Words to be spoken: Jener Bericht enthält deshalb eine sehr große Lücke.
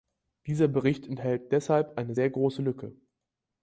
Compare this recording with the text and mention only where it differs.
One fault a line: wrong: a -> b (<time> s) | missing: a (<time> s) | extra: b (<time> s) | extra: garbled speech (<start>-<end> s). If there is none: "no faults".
wrong: Jener -> Dieser (0.5 s)